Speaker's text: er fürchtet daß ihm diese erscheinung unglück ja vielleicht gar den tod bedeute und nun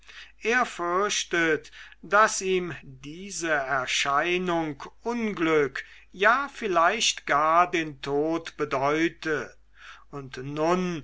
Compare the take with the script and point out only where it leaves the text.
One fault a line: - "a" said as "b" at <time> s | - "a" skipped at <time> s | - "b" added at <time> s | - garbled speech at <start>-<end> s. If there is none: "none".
none